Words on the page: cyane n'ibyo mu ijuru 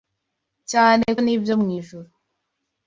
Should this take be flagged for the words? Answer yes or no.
no